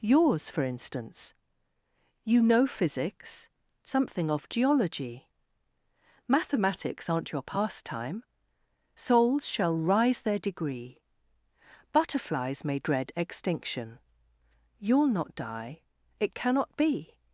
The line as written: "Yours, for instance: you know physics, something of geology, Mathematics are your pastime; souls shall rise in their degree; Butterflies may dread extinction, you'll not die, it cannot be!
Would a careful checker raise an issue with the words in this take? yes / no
yes